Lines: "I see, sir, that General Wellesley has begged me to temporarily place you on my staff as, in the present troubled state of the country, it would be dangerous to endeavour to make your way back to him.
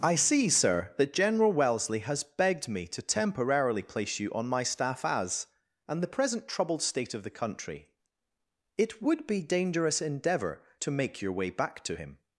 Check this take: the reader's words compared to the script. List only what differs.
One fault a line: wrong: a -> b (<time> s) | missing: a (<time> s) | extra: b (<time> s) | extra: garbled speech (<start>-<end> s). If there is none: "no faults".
wrong: in -> and (5.9 s)
missing: to (10.0 s)